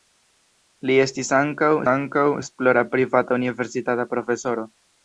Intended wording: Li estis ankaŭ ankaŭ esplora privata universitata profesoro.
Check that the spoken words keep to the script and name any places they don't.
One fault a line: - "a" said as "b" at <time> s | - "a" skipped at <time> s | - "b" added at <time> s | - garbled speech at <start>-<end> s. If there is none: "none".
none